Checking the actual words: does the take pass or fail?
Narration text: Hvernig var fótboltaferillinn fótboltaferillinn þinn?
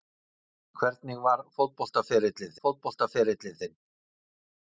pass